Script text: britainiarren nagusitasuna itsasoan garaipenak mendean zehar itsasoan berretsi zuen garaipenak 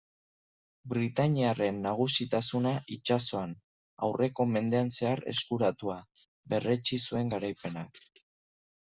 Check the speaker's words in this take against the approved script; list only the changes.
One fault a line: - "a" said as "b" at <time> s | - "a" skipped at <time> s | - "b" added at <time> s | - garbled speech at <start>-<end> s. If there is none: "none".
- "garaipenak" said as "aurreko" at 4.1 s
- "itsasoan" said as "eskuratua" at 5.3 s